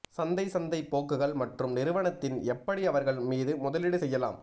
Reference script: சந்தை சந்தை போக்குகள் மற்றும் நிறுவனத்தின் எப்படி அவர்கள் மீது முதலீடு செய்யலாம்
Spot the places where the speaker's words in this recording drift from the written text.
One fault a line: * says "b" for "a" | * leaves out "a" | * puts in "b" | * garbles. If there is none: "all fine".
all fine